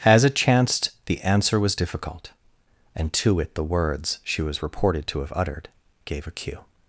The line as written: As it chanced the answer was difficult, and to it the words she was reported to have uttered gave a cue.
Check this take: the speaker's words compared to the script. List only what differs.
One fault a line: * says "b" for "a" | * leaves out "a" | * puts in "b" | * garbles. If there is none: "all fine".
all fine